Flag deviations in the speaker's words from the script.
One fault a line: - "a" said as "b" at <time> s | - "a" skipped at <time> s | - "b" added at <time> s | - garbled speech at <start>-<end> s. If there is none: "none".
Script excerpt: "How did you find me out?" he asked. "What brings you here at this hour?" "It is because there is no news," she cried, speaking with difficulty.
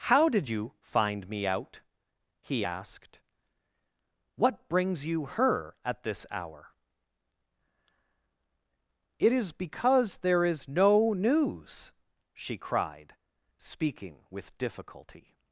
- "here" said as "her" at 5.3 s